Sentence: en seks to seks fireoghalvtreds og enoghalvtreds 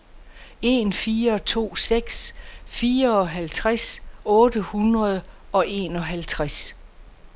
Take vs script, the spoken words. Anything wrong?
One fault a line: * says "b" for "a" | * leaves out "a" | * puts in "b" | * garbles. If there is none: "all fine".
* says "fire" for "seks"
* puts in "otte hundrede"